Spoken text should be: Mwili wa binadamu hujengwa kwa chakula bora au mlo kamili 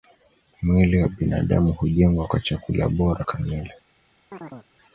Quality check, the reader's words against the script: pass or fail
fail